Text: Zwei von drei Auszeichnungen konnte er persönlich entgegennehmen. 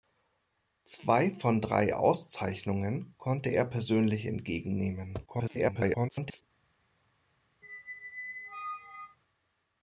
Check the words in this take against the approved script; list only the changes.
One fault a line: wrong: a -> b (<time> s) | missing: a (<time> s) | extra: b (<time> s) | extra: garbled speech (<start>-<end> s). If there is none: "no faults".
extra: garbled speech (5.3-6.4 s)